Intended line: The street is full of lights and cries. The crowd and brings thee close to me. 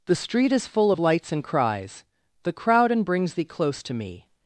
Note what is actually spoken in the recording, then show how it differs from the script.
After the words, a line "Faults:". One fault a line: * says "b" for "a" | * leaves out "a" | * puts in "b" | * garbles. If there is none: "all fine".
The street is full of lights and cries. The crowd and brings thee close to me.
Faults:
all fine